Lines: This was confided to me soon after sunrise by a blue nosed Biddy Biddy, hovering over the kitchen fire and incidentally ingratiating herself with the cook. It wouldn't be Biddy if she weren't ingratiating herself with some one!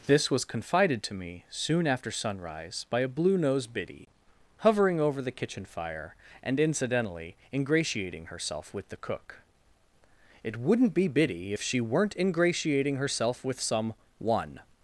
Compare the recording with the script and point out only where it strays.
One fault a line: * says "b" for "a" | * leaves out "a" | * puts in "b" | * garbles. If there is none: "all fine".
* leaves out "Biddy"